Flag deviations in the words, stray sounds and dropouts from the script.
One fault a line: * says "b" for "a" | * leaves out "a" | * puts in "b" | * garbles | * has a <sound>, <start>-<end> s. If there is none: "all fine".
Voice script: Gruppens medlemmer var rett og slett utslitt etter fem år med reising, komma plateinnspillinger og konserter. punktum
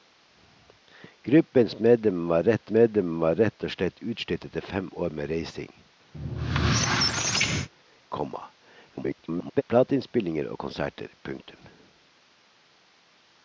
* puts in "medlemmer var rett"
* has a squeak, 6.1-7.7 s
* garbles